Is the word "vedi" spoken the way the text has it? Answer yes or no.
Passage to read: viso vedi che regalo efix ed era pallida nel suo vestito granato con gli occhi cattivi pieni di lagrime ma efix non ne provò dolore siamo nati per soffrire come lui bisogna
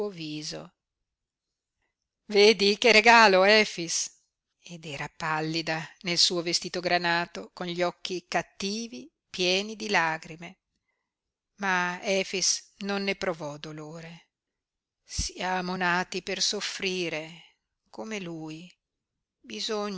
yes